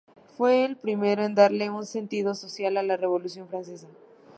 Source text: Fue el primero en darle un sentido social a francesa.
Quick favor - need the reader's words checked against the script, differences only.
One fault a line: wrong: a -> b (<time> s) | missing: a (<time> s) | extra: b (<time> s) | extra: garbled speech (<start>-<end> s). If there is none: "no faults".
extra: la Revolución (2.8 s)